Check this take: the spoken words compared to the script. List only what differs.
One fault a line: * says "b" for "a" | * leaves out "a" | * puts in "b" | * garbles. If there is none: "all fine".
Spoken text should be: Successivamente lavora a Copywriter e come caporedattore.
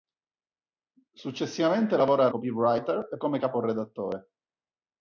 all fine